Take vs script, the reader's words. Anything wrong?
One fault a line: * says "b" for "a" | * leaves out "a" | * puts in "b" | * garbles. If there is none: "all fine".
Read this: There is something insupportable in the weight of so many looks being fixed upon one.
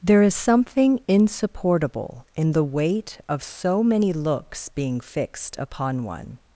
all fine